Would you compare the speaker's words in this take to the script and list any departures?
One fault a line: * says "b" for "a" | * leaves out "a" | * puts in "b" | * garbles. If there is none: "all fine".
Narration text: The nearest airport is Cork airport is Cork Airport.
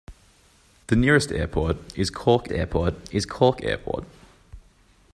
all fine